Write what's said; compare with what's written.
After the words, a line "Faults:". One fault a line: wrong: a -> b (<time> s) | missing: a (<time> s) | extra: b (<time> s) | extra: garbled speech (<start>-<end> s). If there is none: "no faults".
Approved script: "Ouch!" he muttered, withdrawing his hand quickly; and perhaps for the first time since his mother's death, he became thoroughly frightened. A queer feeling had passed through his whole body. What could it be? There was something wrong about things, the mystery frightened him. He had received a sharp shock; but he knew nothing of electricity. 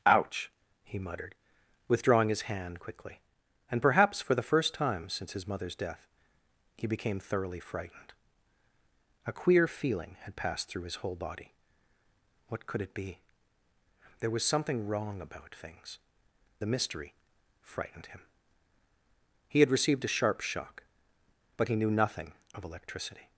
"Ouch!" he muttered, withdrawing his hand quickly; and perhaps for the first time since his mother's death, he became thoroughly frightened. A queer feeling had passed through his whole body. What could it be? There was something wrong about things, the mystery frightened him. He had received a sharp shock; but he knew nothing of electricity.
Faults:
no faults